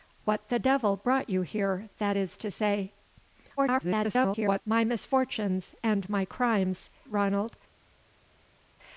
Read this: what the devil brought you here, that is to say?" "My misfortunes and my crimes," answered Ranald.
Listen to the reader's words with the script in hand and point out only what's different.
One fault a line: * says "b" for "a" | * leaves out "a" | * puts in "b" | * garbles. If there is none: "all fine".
* garbles
* leaves out "answered"